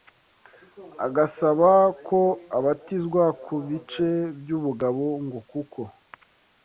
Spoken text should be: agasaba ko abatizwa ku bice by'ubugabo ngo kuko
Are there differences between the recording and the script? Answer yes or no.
no